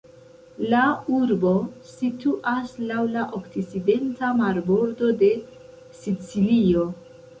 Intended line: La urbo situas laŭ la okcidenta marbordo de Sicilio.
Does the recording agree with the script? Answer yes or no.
yes